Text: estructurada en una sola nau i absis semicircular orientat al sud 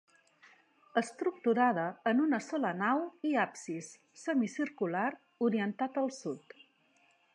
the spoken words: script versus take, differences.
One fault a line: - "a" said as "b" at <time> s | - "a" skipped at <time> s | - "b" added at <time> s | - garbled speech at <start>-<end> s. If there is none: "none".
none